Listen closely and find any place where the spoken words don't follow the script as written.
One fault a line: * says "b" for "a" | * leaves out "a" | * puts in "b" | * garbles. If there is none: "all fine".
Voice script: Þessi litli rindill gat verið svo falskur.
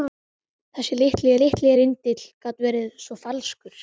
* puts in "litli"